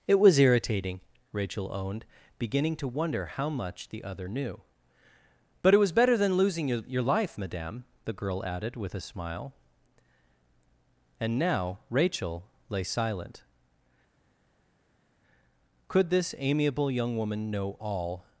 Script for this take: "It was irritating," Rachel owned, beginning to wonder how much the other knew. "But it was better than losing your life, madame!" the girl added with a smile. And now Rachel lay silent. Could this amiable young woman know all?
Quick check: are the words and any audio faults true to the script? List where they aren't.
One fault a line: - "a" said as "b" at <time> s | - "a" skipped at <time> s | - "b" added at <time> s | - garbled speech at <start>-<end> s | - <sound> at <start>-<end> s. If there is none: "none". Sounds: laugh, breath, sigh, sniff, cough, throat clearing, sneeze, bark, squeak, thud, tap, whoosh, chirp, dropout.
- "your" added at 6.9 s